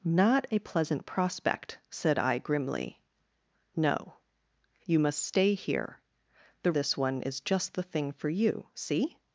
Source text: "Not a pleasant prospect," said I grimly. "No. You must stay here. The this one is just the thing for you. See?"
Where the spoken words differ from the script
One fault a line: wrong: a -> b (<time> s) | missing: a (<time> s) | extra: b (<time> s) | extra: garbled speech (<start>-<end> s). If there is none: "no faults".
no faults